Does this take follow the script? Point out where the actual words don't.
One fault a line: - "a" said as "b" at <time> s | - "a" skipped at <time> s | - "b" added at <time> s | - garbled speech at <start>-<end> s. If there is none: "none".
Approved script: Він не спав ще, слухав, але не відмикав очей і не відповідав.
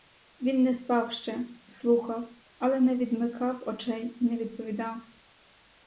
none